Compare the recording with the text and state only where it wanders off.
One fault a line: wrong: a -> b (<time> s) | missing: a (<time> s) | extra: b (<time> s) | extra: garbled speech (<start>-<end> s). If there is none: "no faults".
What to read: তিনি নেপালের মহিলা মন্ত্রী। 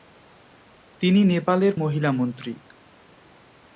no faults